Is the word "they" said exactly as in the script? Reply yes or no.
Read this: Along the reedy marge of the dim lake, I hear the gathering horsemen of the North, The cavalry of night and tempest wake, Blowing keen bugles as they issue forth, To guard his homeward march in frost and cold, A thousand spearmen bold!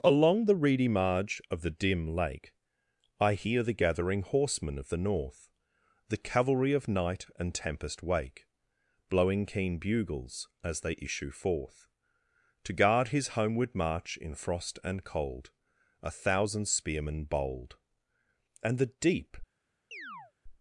yes